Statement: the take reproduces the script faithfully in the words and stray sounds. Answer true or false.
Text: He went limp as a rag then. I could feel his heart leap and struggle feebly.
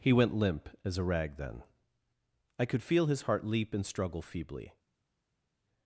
true